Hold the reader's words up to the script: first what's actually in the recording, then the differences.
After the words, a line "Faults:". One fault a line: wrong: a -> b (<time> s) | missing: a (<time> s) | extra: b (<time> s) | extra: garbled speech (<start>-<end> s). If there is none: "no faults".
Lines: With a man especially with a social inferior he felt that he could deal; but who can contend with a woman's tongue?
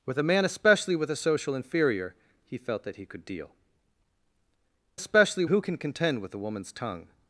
With a man especially with a social inferior he felt that he could deal; especially who can contend with a woman's tongue?
Faults:
wrong: but -> especially (4.9 s)